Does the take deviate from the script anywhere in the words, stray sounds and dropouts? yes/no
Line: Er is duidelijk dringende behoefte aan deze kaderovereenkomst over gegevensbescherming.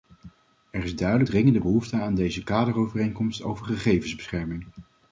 no